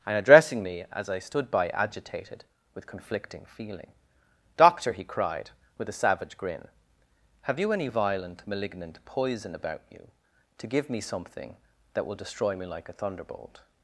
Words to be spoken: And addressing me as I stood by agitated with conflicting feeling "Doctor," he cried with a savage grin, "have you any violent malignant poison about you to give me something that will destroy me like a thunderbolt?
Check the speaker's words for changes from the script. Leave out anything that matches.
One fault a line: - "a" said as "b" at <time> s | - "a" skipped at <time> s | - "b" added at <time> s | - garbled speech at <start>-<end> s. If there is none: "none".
none